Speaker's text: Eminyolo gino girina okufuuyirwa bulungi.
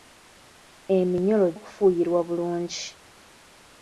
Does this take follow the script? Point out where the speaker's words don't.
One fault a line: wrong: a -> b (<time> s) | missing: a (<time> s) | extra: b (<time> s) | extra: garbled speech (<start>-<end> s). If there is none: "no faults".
missing: gino girina (1.5 s)